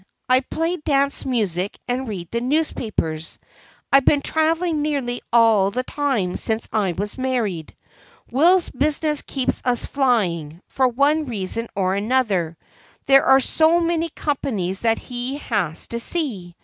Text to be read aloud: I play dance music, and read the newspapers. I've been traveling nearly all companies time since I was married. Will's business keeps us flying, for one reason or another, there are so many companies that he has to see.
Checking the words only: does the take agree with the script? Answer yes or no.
no